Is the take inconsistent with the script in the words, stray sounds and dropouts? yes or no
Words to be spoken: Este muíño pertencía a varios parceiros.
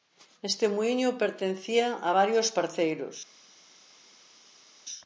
no